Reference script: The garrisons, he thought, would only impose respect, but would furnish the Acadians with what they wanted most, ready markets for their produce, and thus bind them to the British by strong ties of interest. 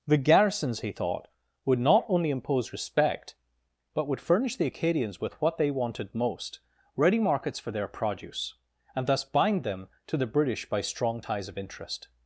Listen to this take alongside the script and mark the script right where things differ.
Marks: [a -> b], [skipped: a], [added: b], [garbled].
The garrisons, he thought, would [added: not] only impose respect, but would furnish the Acadians with what they wanted most, ready markets for their produce, and thus bind them to the British by strong ties of interest.